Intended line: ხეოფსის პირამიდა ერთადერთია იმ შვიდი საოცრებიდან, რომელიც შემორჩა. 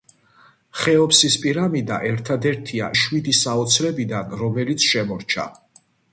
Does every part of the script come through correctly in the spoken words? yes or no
no